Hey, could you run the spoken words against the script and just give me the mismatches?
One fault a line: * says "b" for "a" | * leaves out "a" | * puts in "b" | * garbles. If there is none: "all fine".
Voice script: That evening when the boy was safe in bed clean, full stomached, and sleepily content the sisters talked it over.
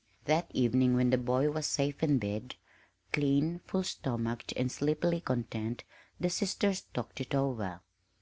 all fine